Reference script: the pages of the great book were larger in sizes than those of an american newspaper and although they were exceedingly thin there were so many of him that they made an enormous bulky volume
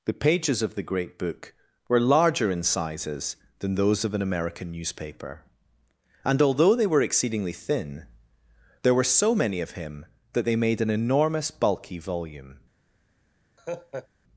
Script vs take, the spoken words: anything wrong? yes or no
no